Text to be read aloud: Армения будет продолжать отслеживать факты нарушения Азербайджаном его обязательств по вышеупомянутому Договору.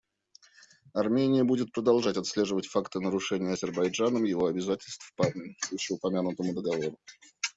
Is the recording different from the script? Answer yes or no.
no